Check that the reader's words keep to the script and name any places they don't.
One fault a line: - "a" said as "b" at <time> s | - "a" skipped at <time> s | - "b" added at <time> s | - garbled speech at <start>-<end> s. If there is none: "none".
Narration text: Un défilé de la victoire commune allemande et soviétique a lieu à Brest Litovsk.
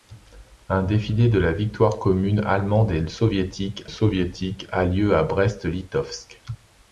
- "soviétique" added at 3.8 s